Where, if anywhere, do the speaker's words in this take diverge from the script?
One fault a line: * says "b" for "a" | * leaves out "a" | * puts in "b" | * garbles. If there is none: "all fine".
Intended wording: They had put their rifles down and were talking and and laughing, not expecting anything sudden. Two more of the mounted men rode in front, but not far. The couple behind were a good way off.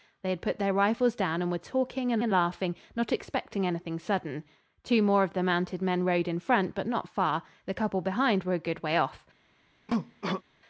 all fine